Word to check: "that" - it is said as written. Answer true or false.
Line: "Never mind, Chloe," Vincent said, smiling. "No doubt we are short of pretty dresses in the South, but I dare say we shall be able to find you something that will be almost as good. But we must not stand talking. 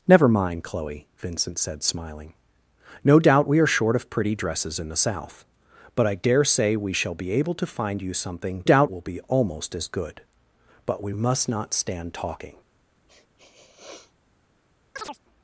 false